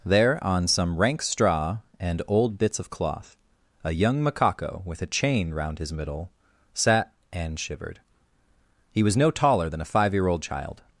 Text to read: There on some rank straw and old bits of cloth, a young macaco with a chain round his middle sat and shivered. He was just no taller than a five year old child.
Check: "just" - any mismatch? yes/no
yes